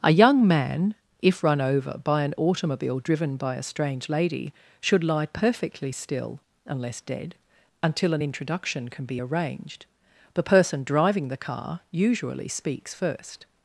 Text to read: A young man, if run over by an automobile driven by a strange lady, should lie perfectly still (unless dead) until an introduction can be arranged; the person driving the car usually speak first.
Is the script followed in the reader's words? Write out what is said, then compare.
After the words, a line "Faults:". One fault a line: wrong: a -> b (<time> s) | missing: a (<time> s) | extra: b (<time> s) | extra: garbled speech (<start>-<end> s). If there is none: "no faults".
A young man, if run over by an automobile driven by a strange lady, should lie perfectly still (unless dead) until an introduction can be arranged; the person driving the car usually speaks first.
Faults:
wrong: speak -> speaks (12.5 s)